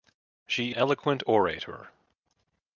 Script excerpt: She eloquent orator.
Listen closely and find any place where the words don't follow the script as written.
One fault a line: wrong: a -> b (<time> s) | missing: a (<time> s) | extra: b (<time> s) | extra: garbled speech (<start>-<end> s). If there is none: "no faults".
no faults